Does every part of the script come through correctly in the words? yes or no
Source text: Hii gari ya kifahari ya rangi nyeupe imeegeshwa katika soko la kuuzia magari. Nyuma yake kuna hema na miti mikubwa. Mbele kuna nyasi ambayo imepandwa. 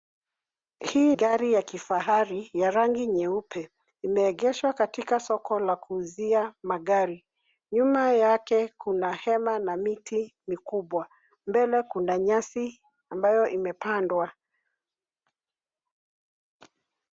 yes